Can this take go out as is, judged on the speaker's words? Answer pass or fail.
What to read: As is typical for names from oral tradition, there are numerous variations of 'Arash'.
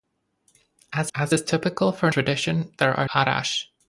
fail